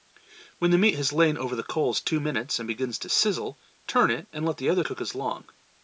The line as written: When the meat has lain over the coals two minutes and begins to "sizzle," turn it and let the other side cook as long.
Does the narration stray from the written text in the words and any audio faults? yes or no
yes